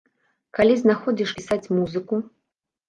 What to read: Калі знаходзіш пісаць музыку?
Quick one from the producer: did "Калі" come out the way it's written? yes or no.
yes